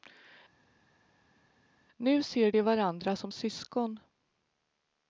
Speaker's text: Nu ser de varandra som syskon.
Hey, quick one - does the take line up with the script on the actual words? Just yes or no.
yes